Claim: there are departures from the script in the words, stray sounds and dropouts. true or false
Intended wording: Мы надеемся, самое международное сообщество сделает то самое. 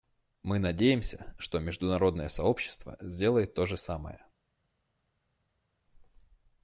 true